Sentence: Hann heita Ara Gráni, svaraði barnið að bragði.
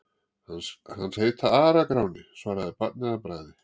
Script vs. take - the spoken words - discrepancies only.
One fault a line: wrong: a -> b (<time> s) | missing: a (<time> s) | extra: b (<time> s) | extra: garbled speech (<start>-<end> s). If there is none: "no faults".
no faults